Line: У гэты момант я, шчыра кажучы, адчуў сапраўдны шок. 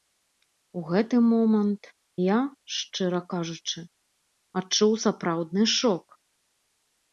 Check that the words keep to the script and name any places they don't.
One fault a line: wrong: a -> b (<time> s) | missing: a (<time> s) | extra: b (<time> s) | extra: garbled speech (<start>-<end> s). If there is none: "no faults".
no faults